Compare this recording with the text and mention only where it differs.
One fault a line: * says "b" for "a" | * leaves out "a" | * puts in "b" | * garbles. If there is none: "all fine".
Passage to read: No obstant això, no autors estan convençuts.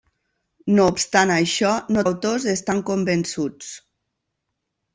all fine